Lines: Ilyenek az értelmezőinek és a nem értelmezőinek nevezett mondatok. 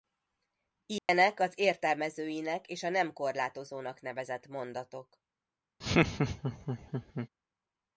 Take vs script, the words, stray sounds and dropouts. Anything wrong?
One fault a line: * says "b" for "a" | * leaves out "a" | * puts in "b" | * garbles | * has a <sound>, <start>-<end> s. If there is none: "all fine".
* has a dropout, 1.0-1.1 s
* says "korlátozónak" for "értelmezőinek"
* has a laugh, 5.8-7.3 s